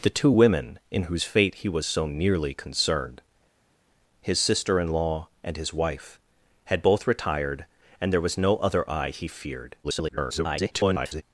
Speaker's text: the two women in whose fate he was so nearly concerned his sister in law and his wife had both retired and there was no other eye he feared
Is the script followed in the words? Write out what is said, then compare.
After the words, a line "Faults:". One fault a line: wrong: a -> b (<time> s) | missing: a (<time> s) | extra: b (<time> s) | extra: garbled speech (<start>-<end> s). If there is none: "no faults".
the two women in whose fate he was so nearly concerned his sister in law and his wife had both retired and there was no other eye he feared [garbled]
Faults:
extra: garbled speech (9.8-11.2 s)